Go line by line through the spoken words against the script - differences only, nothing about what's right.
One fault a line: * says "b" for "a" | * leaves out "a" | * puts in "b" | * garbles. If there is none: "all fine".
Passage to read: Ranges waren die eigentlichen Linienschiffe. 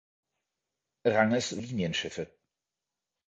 * leaves out "waren die eigentlichen"